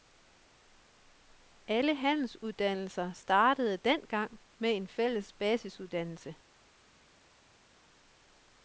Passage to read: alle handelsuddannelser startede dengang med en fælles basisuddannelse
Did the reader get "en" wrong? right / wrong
right